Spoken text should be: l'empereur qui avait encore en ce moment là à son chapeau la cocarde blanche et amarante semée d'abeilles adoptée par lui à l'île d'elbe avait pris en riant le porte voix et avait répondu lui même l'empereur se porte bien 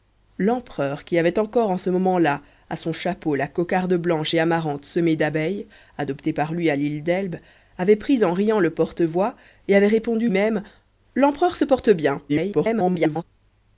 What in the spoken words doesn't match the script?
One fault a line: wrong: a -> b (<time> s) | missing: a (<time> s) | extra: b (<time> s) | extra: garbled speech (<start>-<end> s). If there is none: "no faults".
missing: lui (10.3 s)
extra: garbled speech (12.3-13.2 s)